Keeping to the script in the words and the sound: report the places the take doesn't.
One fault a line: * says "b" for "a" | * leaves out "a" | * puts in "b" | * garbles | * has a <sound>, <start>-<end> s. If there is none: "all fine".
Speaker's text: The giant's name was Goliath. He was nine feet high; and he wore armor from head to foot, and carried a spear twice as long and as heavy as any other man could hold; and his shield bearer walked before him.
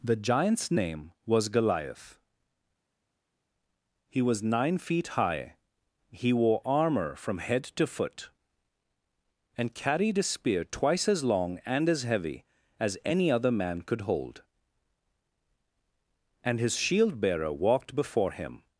* leaves out "and"